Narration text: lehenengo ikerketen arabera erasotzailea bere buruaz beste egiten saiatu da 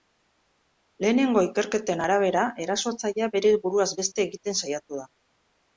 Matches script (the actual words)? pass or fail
pass